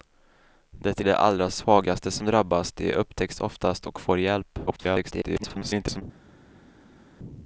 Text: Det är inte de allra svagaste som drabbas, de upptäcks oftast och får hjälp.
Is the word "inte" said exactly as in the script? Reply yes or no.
no